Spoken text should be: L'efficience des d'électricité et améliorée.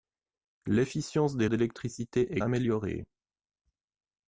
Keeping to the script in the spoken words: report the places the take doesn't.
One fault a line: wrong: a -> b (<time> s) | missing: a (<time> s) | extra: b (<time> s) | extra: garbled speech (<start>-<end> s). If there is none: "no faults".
no faults